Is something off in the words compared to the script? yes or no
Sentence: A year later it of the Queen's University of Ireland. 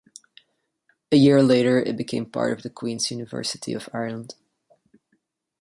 yes